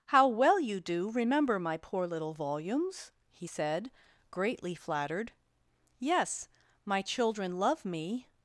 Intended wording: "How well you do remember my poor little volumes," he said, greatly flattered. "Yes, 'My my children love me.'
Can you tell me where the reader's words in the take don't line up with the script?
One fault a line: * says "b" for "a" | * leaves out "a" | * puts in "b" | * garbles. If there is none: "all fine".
* leaves out "my"